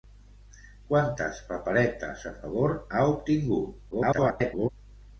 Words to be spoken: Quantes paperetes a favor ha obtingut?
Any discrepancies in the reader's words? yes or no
yes